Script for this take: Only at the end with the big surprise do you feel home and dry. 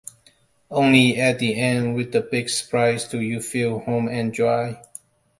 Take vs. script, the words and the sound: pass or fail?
pass